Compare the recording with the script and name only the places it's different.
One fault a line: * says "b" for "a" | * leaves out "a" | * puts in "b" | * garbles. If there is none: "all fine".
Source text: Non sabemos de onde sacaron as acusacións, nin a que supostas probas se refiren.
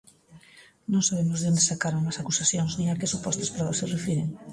all fine